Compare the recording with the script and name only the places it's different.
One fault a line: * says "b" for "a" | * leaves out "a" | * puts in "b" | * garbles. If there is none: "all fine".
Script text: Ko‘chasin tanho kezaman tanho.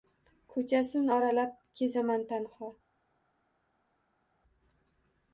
* says "oralab" for "tanho"